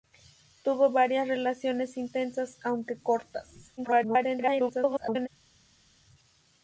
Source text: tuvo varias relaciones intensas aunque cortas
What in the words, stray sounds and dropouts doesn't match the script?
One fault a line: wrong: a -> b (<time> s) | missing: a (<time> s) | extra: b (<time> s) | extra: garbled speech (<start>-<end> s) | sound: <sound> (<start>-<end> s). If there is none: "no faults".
extra: garbled speech (3.8-5.3 s)